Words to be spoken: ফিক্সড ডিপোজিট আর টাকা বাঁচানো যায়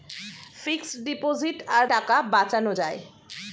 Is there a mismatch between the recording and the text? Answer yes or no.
no